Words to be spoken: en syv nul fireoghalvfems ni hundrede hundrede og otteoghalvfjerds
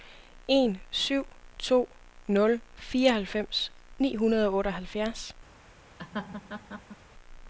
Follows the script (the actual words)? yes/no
no